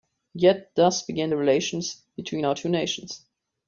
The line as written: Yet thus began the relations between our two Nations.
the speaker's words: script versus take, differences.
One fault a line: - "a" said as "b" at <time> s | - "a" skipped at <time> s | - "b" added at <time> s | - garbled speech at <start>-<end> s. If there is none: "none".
none